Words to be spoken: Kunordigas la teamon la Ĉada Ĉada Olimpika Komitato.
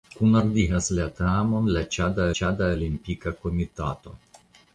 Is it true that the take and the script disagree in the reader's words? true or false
false